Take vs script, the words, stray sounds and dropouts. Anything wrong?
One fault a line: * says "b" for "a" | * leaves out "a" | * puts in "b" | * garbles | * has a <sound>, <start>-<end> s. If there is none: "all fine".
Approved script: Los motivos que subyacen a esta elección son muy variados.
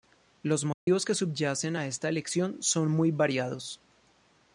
* has a dropout, 0.7-0.9 s